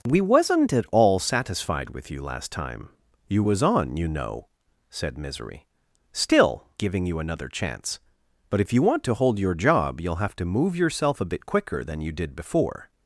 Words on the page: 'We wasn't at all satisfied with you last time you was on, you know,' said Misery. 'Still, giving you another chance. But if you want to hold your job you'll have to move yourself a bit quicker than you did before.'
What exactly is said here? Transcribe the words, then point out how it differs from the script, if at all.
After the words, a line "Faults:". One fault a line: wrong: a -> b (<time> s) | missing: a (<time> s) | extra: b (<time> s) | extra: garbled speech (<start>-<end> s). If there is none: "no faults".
'We wasn't at all satisfied with you last time you was on, you know,' said Misery. 'Still, giving you another chance. But if you want to hold your job you'll have to move yourself a bit quicker than you did before.'
Faults:
no faults